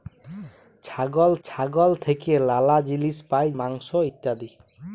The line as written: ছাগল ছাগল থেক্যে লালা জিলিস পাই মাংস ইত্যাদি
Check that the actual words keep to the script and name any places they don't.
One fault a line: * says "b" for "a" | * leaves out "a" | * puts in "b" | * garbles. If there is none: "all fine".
all fine